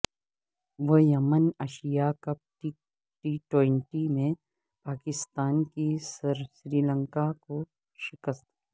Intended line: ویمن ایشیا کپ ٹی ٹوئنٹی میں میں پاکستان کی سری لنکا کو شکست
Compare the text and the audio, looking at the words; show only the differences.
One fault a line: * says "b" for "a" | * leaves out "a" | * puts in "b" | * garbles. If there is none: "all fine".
* leaves out "میں"